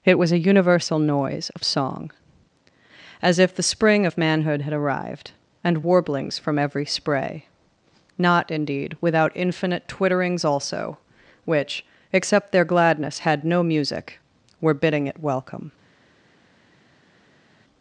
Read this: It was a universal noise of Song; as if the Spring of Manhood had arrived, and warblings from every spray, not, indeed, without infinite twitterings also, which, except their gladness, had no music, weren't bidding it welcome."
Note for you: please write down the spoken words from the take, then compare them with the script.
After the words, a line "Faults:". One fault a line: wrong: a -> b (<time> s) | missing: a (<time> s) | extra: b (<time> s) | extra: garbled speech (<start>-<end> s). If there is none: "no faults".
It was a universal noise of Song; as if the Spring of Manhood had arrived, and warblings from every spray, not, indeed, without infinite twitterings also, which, except their gladness, had no music, were bidding it welcome."
Faults:
wrong: weren't -> were (14.6 s)